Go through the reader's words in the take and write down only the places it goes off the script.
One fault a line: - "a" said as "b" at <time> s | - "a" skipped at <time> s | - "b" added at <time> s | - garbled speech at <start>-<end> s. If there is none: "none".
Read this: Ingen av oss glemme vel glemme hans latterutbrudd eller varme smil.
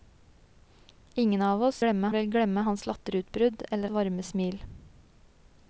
none